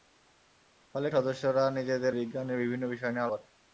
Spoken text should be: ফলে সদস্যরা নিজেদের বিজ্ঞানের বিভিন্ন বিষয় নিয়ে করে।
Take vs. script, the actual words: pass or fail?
pass